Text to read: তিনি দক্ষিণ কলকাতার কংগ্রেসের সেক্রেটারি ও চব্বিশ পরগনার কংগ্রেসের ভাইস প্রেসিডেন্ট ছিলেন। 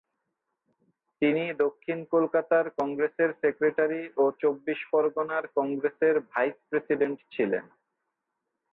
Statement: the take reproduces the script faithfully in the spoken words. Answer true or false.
true